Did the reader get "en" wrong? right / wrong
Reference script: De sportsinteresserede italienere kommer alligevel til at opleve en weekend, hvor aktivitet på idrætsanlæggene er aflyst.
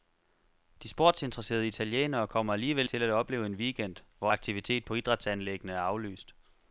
right